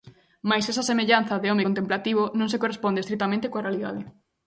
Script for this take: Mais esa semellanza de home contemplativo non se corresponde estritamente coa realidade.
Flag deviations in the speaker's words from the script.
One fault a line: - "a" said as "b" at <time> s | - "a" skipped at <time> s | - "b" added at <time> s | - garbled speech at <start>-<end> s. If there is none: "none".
none